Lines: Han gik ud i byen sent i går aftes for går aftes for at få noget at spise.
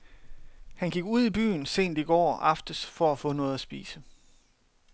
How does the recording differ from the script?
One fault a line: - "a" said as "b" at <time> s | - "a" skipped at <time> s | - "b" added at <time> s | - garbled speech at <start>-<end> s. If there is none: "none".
- "går aftes for" skipped at 3.1 s